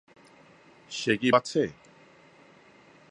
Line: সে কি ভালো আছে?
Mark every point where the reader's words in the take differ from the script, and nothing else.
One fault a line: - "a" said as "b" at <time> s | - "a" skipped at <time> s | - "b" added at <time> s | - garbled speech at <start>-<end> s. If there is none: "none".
- "ভালো" skipped at 1.3 s